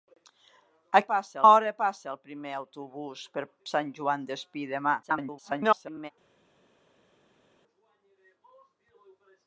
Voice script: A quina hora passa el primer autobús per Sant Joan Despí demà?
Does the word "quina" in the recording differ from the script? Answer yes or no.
yes